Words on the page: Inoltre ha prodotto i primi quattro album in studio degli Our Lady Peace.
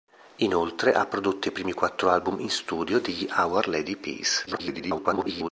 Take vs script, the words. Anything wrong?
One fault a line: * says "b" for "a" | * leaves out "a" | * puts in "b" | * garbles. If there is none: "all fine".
* garbles